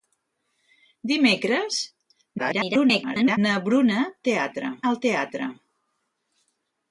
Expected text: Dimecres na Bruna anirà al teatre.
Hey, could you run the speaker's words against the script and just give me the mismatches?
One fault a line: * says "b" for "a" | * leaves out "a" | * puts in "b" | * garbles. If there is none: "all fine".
* garbles
* says "teatre" for "anirà"